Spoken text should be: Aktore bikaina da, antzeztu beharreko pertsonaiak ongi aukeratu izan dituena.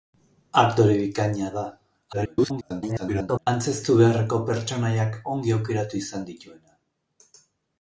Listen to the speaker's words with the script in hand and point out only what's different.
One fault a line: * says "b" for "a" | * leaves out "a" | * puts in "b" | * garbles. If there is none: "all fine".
* garbles